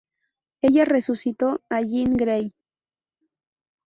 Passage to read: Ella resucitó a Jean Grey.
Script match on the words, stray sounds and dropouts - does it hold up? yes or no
yes